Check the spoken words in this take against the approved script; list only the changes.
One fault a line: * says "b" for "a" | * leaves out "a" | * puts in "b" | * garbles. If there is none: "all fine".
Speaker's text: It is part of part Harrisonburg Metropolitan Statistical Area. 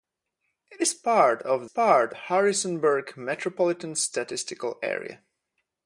all fine